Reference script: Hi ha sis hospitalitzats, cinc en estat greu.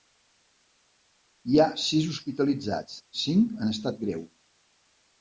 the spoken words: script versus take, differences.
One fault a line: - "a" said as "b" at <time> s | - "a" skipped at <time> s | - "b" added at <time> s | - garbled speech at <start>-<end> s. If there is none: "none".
none